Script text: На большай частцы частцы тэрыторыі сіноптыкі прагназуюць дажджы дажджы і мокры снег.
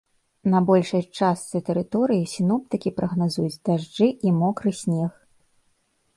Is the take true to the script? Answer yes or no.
no